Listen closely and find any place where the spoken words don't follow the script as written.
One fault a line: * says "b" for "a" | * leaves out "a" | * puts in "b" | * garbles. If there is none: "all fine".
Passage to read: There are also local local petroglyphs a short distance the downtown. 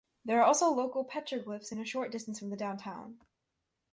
* leaves out "local"
* puts in "from"